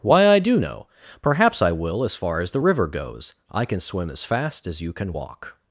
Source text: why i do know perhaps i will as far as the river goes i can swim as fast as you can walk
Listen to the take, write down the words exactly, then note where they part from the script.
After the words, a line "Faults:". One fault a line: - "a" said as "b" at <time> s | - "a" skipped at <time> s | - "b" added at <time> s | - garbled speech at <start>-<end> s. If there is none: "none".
why i do know perhaps i will as far as the river goes i can swim as fast as you can walk
Faults:
none